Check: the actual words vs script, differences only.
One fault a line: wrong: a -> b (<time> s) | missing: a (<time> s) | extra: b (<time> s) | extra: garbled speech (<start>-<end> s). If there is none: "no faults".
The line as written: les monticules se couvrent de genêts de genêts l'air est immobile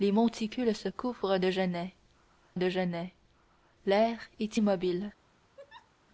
no faults